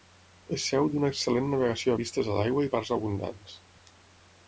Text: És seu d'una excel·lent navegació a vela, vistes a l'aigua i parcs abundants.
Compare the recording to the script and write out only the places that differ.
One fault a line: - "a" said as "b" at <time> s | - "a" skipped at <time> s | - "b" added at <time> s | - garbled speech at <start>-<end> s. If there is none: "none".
- "vela" skipped at 2.0 s